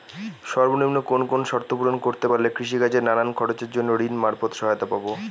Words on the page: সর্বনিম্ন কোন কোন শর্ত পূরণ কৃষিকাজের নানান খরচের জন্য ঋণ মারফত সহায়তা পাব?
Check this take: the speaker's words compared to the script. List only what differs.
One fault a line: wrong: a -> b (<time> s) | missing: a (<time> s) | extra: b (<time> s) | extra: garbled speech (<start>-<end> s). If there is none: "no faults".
extra: করতে পারলে (2.0 s)